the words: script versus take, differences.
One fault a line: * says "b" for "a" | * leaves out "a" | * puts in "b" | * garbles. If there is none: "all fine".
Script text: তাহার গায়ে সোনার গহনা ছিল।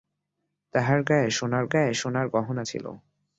* puts in "গায়ে সোনার"